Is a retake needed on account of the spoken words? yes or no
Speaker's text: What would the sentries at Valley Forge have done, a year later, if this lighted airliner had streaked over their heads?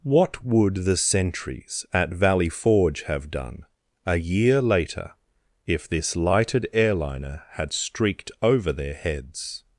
no